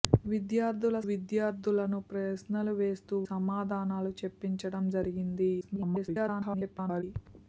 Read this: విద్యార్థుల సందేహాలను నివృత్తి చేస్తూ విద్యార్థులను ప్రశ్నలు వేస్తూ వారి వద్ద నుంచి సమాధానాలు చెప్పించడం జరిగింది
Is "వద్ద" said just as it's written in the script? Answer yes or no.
no